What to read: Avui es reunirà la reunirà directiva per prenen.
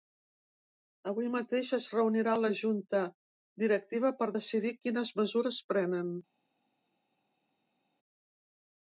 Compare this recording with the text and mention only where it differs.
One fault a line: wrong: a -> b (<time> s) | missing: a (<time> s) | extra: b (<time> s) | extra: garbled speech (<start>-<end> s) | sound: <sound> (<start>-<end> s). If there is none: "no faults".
extra: mateix (1.4 s)
wrong: reunirà -> junta (2.6 s)
extra: decidir quines mesures (4.4 s)